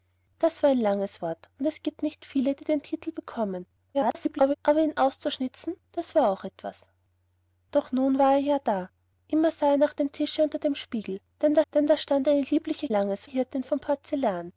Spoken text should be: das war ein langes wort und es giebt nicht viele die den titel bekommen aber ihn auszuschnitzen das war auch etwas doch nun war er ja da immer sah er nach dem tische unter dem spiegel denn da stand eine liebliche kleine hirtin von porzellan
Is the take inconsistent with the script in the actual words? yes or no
yes